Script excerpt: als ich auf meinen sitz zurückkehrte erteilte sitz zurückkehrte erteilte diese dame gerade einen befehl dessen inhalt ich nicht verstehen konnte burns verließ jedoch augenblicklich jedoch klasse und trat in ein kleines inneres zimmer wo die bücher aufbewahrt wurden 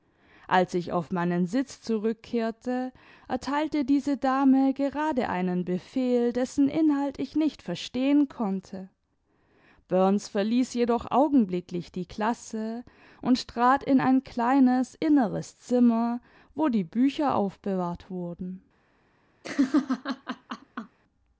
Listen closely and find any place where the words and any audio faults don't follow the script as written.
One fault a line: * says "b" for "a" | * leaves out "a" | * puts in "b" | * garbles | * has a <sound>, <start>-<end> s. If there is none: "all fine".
* leaves out "sitz zurückkehrte erteilte"
* says "die" for "jedoch"
* has a laugh, 19.4-21.0 s